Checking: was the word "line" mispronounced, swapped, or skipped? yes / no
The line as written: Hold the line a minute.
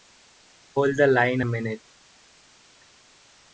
no